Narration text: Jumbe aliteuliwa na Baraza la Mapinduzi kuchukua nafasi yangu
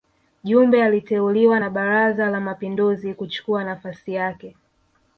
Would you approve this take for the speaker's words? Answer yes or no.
no